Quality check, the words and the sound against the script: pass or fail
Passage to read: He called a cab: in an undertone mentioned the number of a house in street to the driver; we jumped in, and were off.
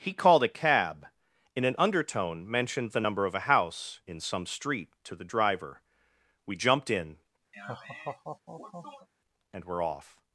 fail